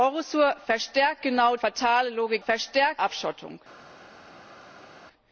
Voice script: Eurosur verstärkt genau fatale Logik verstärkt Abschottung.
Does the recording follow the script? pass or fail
pass